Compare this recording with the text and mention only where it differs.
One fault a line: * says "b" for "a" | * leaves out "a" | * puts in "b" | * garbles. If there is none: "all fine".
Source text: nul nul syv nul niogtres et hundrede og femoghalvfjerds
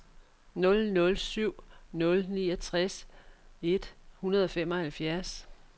all fine